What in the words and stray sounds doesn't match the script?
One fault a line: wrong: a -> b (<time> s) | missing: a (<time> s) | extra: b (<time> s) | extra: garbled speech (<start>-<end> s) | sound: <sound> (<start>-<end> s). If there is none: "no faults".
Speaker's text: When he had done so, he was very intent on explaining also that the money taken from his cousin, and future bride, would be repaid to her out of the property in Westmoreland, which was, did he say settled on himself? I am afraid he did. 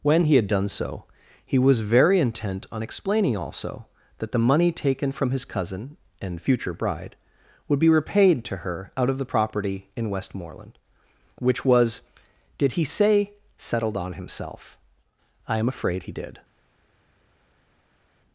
no faults